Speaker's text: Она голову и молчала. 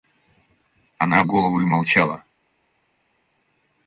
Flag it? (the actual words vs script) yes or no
no